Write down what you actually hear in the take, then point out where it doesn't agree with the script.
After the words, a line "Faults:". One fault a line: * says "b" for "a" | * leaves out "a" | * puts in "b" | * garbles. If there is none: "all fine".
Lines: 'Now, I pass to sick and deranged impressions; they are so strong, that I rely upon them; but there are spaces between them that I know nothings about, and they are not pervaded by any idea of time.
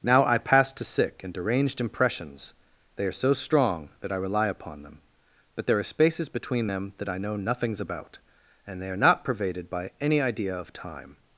'Now, I pass to sick and deranged impressions; they are so strong, that I rely upon them; but there are spaces between them that I know nothings about, and they are not pervaded by any idea of time.
Faults:
all fine